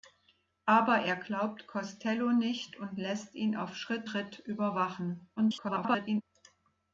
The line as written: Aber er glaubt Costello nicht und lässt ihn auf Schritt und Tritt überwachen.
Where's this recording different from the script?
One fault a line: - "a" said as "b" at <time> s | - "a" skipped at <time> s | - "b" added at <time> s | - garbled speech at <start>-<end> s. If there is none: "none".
- "und" skipped at 4.1 s
- garbled speech at 5.4-6.2 s